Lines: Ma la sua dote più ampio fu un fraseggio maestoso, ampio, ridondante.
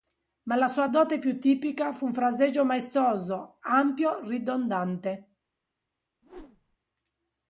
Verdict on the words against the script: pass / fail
fail